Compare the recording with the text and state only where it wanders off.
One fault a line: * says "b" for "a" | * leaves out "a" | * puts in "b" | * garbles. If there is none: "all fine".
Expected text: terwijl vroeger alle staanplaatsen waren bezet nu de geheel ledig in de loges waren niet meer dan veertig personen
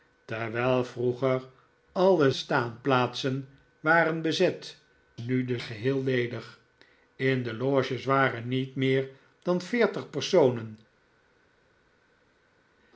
all fine